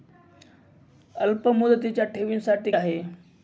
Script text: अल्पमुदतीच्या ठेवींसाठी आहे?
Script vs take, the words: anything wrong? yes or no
no